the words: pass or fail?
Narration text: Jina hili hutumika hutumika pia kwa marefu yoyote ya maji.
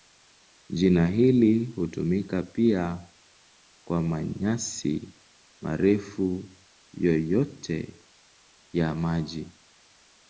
fail